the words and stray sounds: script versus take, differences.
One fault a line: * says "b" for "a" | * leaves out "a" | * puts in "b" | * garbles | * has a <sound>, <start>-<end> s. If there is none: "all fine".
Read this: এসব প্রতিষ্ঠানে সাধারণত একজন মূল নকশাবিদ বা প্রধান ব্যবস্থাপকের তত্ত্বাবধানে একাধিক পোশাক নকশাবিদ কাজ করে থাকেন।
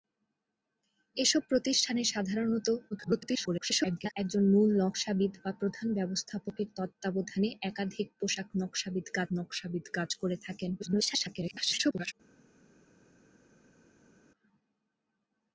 * garbles
* puts in "নকশাবিদ কাজ"
* garbles